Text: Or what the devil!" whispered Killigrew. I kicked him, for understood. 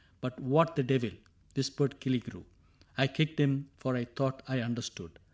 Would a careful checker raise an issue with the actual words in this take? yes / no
yes